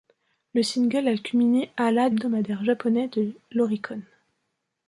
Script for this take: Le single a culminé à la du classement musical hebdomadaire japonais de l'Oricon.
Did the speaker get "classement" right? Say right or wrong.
wrong